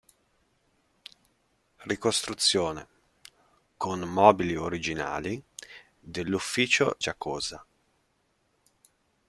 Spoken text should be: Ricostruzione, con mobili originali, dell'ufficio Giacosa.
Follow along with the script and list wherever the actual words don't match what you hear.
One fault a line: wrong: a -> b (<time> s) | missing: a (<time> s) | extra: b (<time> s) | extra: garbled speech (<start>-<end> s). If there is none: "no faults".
no faults